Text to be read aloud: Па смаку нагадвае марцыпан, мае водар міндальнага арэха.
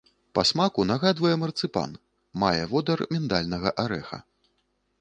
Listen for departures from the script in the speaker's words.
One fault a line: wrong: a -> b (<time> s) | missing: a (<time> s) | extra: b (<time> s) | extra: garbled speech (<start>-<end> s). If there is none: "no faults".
no faults